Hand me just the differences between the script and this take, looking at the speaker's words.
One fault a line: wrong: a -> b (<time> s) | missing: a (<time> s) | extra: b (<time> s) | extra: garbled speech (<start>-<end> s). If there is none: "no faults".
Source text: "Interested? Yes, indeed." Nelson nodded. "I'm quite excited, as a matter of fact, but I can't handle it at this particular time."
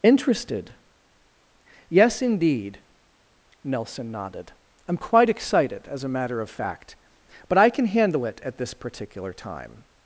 wrong: can't -> can (7.7 s)